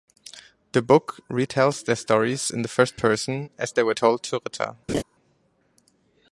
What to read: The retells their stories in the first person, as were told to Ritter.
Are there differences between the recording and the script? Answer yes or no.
yes